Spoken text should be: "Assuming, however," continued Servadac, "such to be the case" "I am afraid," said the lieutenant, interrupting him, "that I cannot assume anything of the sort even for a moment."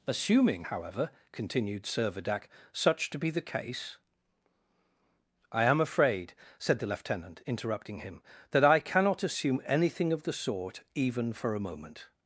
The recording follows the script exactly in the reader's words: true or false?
true